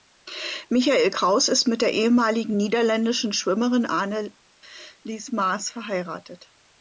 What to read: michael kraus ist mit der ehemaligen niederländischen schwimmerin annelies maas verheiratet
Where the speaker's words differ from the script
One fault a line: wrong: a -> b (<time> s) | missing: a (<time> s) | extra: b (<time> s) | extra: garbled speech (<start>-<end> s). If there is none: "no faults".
no faults